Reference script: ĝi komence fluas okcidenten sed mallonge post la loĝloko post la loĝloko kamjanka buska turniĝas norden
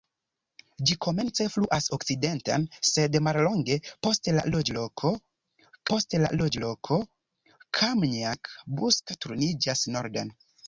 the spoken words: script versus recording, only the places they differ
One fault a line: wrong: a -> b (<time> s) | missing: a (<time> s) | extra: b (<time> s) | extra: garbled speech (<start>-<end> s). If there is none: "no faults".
no faults